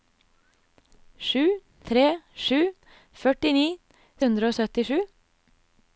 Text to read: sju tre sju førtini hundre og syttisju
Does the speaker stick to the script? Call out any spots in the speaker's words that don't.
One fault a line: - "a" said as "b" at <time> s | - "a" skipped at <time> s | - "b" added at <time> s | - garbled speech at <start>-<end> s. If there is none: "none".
none